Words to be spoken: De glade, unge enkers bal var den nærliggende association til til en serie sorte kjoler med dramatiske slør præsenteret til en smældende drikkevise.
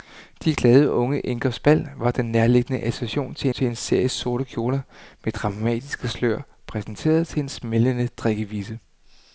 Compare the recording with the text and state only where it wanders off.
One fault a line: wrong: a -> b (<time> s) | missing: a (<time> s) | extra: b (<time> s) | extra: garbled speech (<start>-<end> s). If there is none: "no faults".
no faults